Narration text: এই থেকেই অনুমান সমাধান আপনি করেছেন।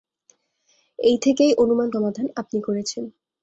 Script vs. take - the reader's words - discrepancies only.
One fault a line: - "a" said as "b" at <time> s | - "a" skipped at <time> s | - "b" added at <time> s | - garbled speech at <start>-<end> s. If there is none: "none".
none